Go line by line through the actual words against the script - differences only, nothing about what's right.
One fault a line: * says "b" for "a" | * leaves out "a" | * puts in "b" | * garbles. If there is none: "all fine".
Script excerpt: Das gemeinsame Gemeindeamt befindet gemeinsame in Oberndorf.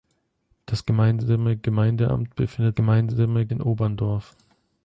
all fine